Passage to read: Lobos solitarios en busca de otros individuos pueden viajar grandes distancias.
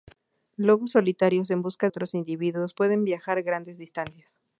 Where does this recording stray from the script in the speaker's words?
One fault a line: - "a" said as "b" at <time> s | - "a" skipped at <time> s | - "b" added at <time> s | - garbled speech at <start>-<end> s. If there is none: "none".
- "de" skipped at 1.9 s